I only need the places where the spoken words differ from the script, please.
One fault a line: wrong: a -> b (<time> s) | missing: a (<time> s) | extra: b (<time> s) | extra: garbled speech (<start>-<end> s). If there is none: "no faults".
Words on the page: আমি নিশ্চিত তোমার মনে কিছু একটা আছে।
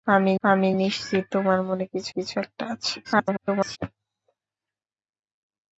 extra: আমি (0.4 s)
extra: কিছু (2.1 s)
extra: garbled speech (3.0-3.8 s)